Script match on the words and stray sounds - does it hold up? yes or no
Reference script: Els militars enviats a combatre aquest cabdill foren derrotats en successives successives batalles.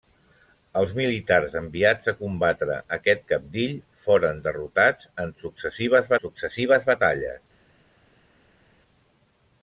yes